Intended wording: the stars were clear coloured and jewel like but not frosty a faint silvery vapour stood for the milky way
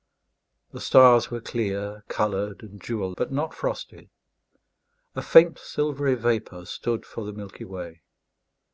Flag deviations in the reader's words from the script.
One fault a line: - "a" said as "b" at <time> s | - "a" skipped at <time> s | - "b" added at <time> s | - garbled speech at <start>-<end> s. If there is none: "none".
- "like" skipped at 3.1 s